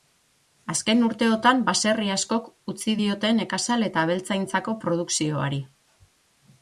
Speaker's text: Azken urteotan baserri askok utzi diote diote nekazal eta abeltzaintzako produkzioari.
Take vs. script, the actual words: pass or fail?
fail